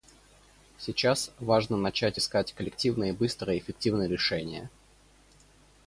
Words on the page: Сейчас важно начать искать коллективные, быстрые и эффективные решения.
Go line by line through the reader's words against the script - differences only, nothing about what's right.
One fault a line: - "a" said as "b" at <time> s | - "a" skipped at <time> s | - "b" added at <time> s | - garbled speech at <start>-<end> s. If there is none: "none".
none